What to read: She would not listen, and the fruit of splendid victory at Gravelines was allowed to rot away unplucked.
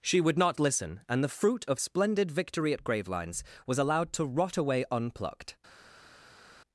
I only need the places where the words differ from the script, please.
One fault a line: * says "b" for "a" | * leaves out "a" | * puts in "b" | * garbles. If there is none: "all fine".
all fine